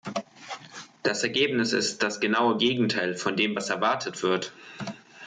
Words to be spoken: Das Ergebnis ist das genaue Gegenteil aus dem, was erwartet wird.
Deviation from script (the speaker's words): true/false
true